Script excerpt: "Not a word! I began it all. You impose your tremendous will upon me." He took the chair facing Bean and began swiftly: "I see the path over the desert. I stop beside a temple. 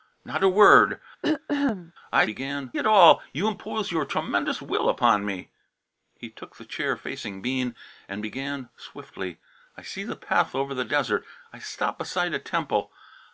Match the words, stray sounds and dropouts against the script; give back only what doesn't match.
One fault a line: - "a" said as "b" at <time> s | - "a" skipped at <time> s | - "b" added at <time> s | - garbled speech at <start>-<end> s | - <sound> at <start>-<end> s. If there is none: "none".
- throat clearing at 1.2-1.9 s